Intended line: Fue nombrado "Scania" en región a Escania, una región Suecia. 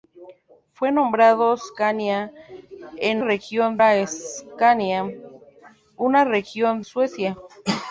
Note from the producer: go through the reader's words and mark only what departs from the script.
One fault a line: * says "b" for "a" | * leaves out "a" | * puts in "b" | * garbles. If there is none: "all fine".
all fine